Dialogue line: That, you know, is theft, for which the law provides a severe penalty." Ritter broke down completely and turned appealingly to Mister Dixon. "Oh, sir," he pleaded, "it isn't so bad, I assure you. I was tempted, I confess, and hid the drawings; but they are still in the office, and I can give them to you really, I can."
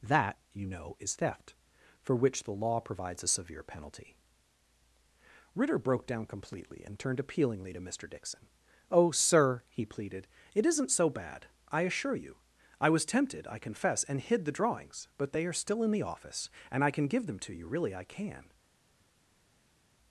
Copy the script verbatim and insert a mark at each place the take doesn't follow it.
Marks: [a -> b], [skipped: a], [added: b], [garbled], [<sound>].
That, you know, is theft, for which the law provides a severe penalty." Ritter broke down completely and turned appealingly to Mister Dixon. "Oh, sir," he pleaded, "it isn't so bad, I assure you. I was tempted, I confess, and hid the drawings; but they are still in the office, and I can give them to you really, I can."